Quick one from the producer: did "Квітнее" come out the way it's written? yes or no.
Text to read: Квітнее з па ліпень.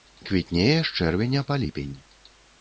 yes